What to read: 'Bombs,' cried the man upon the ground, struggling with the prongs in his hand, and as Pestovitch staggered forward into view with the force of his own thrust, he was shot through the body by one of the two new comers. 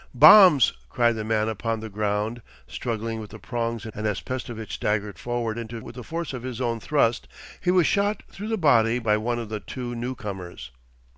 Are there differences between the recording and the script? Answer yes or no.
yes